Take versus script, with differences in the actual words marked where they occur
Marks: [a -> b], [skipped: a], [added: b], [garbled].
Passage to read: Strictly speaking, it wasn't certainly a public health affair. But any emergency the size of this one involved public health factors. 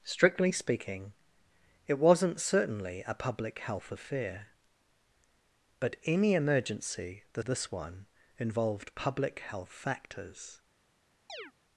Strictly speaking, it wasn't certainly a public health affair. But any emergency the [skipped: size of] this one involved public health factors.